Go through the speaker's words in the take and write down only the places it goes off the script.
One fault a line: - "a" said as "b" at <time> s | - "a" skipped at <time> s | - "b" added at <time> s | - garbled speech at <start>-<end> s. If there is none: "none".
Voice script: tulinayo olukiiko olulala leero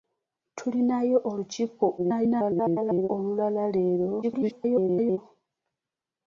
- garbled speech at 2.0-3.1 s
- garbled speech at 4.2-5.2 s